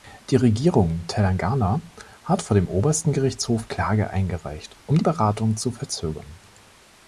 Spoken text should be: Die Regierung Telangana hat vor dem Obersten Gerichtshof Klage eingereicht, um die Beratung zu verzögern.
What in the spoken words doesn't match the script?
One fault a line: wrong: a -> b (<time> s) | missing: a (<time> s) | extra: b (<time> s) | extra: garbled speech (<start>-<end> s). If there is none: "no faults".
no faults